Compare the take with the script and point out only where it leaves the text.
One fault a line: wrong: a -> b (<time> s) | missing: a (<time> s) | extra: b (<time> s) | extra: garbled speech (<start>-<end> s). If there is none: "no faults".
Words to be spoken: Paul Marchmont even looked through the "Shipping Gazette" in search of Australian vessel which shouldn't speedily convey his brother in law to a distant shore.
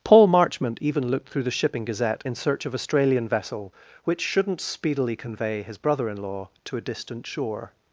no faults